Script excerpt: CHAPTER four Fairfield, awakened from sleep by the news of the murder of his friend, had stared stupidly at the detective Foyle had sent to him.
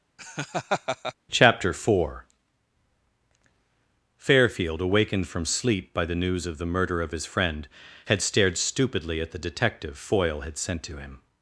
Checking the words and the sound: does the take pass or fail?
fail